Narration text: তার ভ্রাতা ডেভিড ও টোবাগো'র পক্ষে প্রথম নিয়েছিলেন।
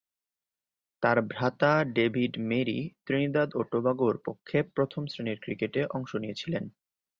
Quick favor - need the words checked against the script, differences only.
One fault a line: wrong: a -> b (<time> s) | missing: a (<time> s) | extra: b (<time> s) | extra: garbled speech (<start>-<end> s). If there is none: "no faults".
extra: মেরি ত্রিনিদাদ (2.5 s)
extra: শ্রেণীর ক্রিকেটে অংশ (5.1 s)